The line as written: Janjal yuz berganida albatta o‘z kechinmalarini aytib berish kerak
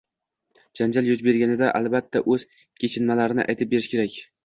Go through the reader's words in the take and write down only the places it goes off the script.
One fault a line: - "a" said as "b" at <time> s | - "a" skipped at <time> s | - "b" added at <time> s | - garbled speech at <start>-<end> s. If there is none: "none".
none